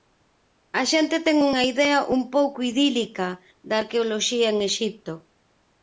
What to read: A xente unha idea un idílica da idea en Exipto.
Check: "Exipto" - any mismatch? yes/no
no